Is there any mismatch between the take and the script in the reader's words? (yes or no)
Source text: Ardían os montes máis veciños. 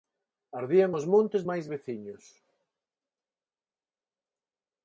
no